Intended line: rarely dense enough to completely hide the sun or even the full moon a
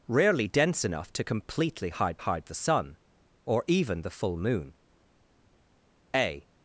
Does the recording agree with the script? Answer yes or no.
no